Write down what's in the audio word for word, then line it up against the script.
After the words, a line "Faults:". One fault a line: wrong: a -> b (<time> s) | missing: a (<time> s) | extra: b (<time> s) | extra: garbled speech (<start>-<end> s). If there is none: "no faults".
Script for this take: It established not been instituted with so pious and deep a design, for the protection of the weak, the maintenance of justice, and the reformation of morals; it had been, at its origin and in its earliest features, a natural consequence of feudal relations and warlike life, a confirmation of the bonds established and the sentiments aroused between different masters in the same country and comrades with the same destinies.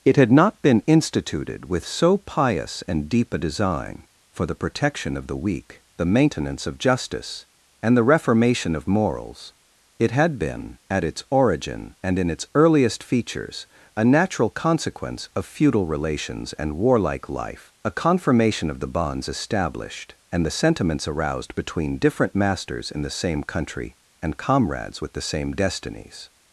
It had not been instituted with so pious and deep a design, for the protection of the weak, the maintenance of justice, and the reformation of morals; it had been, at its origin and in its earliest features, a natural consequence of feudal relations and warlike life, a confirmation of the bonds established and the sentiments aroused between different masters in the same country and comrades with the same destinies.
Faults:
wrong: established -> had (0.2 s)